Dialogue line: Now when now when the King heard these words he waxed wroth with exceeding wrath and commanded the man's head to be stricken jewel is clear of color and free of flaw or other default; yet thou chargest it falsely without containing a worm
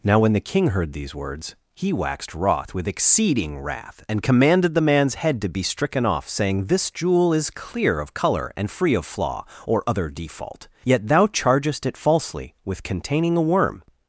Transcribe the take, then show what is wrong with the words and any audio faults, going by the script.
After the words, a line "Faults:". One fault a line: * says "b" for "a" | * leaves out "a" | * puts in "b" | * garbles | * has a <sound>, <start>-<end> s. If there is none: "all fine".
Now when the King heard these words he waxed wroth with exceeding wrath and commanded the man's head to be stricken off, saying," This jewel is clear of color and free of flaw or other default; yet thou chargest it falsely with containing a worm
Faults:
* leaves out "now when"
* puts in "off saying This"
* says "with" for "without"